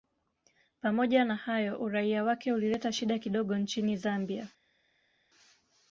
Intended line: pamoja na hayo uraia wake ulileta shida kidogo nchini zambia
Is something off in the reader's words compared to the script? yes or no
no